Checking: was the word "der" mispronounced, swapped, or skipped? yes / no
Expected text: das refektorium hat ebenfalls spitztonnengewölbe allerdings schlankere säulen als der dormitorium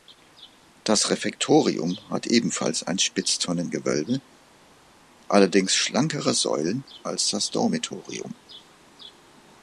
yes